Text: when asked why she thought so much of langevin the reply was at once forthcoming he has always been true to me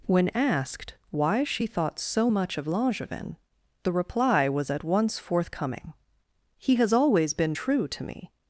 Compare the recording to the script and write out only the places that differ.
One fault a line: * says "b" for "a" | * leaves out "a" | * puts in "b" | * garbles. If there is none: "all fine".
all fine